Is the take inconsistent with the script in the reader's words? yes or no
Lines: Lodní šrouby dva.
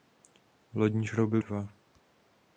no